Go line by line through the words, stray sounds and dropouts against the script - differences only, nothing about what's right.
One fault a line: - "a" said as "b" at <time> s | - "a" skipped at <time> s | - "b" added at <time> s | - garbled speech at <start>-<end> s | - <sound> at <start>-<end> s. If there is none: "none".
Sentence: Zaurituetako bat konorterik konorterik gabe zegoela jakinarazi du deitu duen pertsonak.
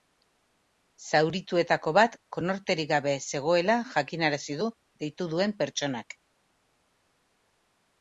- "konorterik" skipped at 2.9 s